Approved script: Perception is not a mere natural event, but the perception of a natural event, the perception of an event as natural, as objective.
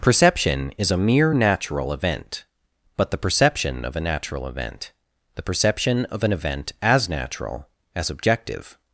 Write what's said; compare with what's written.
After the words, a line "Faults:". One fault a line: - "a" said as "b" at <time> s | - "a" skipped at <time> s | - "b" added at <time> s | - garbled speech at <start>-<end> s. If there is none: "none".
Perception is a mere natural event, but the perception of a natural event, the perception of an event as natural, as objective.
Faults:
- "not" skipped at 0.9 s